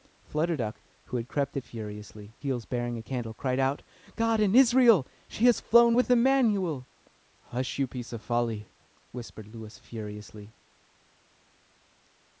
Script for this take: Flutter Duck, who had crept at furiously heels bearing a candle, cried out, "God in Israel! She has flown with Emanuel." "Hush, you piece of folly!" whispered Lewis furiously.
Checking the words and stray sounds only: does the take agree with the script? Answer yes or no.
yes